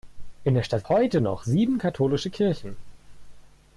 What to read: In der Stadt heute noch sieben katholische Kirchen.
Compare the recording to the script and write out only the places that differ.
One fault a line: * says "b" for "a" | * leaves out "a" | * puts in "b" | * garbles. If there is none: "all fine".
all fine